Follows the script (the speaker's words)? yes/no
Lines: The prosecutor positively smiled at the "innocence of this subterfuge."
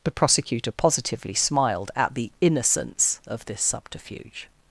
yes